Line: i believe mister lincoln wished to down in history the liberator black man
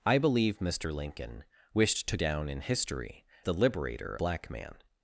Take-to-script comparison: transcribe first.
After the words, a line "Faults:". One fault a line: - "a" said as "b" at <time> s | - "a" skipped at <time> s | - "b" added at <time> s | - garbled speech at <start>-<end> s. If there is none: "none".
i believe mister lincoln wished to down in history the liberator black man
Faults:
none